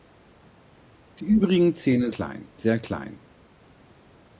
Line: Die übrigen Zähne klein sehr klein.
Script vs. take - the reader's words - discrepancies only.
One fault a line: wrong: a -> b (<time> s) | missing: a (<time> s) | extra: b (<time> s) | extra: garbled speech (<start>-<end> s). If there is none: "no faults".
no faults